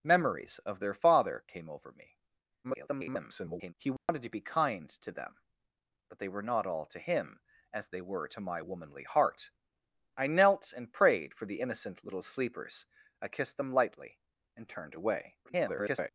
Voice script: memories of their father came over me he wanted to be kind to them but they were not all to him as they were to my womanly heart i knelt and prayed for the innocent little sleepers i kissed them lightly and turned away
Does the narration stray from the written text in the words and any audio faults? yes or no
yes